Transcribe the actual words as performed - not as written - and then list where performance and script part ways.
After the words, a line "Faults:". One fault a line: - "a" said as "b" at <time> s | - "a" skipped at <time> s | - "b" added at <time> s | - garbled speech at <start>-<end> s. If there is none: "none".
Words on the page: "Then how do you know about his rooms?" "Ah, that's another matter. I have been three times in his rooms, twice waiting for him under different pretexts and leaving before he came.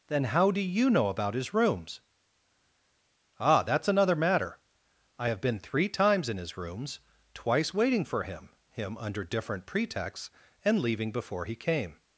"Then how do you know about his rooms?" "Ah, that's another matter. I have been three times in his rooms, twice waiting for him him under different pretexts and leaving before he came.
Faults:
- "him" added at 8.7 s